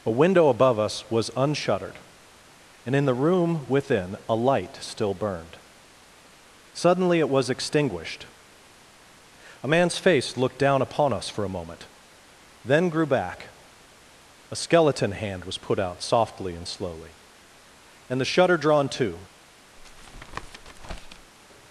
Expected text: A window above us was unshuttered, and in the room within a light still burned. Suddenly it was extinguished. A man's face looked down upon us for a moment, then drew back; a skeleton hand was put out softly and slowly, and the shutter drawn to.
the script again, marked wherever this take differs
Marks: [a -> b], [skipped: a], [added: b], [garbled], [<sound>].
A window above us was unshuttered, and in the room within a light still burned. Suddenly it was extinguished. A man's face looked down upon us for a moment, then [drew -> grew] back; a skeleton hand was put out softly and slowly, and the shutter drawn to. [tap]